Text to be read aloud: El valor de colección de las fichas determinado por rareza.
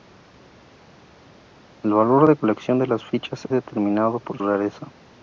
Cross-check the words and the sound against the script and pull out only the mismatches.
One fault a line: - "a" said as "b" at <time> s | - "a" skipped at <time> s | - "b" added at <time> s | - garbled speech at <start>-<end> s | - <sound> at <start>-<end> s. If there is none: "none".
none